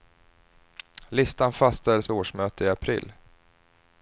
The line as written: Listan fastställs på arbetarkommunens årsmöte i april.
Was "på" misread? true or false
true